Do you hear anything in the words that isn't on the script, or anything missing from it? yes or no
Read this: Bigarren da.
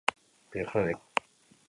no